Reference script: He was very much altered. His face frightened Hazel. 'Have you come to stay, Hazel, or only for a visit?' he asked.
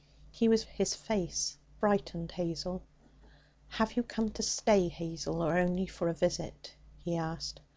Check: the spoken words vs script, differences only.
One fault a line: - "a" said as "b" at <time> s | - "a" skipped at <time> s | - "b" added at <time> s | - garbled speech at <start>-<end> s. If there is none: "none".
- "very much altered" skipped at 0.6 s